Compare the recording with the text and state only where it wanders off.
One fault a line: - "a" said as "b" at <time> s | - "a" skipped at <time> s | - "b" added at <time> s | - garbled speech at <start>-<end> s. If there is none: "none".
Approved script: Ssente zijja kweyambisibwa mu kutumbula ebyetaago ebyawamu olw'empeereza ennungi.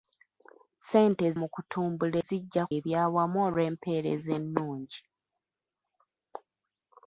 - "zijja kweyambisibwa" skipped at 1.2 s
- "ebyetaago" said as "zijja" at 2.3 s